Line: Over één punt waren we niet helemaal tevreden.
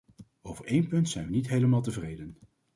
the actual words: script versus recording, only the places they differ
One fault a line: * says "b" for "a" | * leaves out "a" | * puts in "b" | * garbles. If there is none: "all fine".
* says "zijn" for "waren"